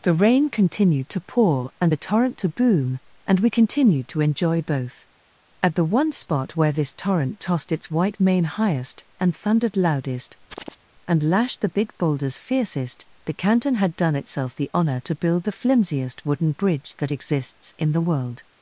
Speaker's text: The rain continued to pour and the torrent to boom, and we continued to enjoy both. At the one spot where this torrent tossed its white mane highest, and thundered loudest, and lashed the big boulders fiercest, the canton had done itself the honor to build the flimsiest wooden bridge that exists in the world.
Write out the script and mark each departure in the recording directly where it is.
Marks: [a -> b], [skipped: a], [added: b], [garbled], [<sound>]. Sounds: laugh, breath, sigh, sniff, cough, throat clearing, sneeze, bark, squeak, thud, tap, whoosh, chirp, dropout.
The rain continued to pour and the torrent to boom, and we continued to enjoy both. At the one spot where this torrent tossed its white mane highest, and thundered loudest, [chirp] and lashed the big boulders fiercest, the canton had done itself the honor to build the flimsiest wooden bridge that exists in the world.